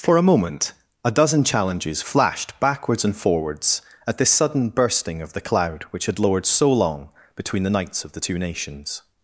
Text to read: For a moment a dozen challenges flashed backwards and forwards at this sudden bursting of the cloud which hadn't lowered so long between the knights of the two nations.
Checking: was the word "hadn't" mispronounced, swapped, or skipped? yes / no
yes